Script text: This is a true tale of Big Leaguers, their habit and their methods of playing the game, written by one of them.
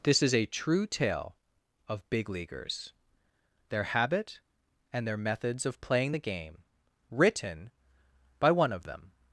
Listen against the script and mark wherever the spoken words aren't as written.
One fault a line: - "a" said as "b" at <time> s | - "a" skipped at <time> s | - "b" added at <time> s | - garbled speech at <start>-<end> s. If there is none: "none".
none